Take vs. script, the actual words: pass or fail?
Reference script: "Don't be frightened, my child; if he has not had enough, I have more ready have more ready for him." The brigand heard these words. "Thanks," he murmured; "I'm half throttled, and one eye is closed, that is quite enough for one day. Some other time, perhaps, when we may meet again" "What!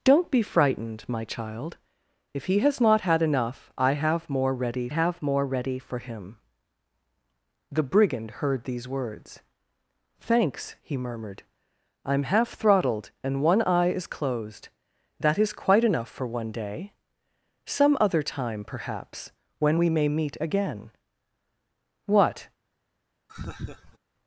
pass